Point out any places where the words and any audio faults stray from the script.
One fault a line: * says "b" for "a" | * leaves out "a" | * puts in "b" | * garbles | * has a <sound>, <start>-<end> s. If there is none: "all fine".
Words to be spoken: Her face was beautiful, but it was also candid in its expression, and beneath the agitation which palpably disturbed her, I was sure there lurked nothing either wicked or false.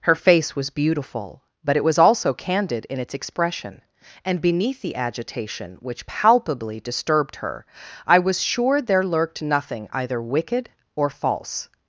all fine